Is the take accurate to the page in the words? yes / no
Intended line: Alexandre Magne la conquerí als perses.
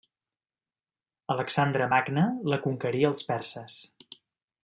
yes